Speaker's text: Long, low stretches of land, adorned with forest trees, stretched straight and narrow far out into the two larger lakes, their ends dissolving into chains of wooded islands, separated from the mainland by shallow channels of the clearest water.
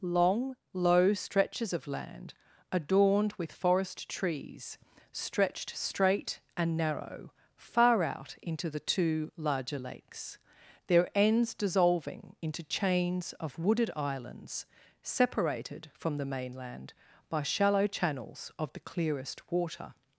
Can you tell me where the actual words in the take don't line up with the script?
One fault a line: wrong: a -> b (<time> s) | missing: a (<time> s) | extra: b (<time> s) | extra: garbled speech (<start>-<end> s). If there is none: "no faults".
no faults